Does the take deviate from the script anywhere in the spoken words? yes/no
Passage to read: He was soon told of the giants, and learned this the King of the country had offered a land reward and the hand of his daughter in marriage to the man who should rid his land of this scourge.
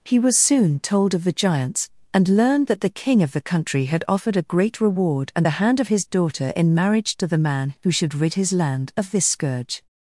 yes